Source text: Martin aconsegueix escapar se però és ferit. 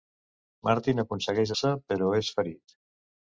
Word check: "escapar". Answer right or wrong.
wrong